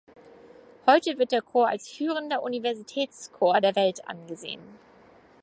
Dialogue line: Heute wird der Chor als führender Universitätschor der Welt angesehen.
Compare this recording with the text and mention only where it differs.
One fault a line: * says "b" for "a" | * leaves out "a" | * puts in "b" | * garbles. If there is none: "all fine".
all fine